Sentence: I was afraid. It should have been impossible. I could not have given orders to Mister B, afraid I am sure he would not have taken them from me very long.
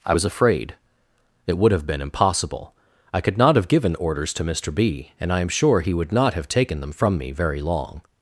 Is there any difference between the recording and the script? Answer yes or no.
yes